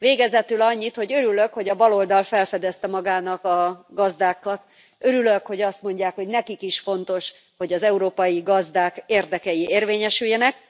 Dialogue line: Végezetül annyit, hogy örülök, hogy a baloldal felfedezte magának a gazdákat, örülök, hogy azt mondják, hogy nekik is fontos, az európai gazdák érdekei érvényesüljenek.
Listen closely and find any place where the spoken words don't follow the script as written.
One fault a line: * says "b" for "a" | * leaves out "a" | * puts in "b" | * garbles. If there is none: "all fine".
* puts in "hogy"